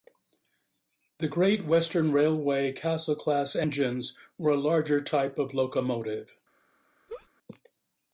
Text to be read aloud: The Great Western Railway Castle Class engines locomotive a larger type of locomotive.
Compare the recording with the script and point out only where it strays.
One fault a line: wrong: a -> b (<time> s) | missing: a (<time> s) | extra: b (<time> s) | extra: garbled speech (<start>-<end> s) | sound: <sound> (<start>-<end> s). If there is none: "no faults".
wrong: locomotive -> were (4.4 s)
sound: laugh (7.1-7.3 s)